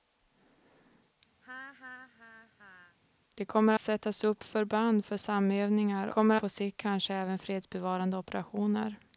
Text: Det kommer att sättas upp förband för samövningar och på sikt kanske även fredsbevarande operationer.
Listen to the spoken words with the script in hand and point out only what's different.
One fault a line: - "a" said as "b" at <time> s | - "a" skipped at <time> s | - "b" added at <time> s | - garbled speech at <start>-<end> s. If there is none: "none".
- "att" skipped at 3.7 s
- "och" said as "kommer" at 6.1 s